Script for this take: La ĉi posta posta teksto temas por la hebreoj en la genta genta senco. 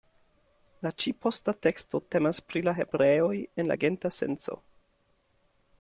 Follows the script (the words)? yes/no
no